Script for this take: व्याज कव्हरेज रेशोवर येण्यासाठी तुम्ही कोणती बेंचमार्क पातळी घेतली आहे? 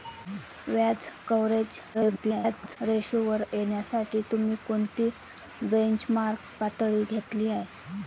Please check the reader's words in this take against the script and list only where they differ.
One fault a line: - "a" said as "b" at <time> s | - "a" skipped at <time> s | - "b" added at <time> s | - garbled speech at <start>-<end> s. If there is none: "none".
- garbled speech at 1.9-2.8 s